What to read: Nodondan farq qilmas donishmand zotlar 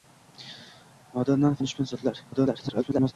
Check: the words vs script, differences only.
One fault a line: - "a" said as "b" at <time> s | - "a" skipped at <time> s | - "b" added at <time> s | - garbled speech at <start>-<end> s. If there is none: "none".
- "farq qilmas" skipped at 1.6 s
- garbled speech at 2.3-3.1 s